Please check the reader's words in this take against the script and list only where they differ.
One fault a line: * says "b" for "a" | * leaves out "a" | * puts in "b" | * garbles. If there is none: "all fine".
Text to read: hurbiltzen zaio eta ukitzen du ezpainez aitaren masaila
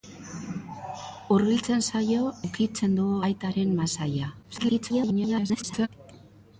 * leaves out "eta"
* leaves out "ezpainez"
* garbles